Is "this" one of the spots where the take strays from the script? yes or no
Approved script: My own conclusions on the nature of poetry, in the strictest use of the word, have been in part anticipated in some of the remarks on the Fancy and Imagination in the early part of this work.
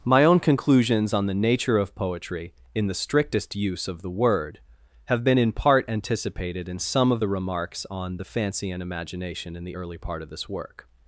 no